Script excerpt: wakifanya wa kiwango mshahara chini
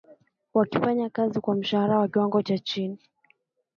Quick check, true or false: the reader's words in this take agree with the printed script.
false